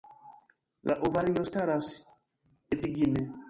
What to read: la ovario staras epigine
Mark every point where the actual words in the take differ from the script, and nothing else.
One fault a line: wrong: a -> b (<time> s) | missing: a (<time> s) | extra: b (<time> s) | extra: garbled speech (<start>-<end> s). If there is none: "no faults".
no faults